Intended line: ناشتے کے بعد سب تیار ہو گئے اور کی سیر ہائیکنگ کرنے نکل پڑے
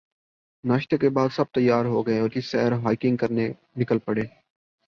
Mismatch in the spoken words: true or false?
false